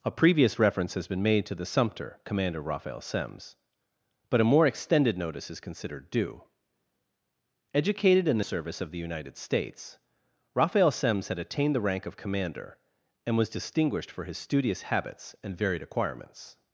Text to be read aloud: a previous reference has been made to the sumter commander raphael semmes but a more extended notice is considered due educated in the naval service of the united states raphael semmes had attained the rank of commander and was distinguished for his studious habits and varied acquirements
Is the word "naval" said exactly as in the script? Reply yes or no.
no